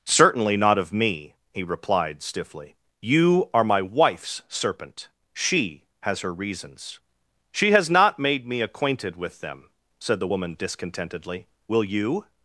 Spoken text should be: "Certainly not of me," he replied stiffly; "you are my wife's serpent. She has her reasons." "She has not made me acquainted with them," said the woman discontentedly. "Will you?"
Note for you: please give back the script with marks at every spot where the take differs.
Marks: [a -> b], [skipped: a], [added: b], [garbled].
"Certainly not of me," he replied stiffly; "you are my wife's serpent. She has her reasons." "She has not made me acquainted with them," said the woman discontentedly. "Will you?"